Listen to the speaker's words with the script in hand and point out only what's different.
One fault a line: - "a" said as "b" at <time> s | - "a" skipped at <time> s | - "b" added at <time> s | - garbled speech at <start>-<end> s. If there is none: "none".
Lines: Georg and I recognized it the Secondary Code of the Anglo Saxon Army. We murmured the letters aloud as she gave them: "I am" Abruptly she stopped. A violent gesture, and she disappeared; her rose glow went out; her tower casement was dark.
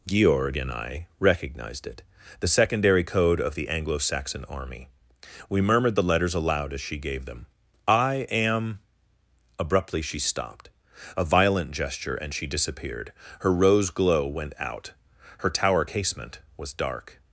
none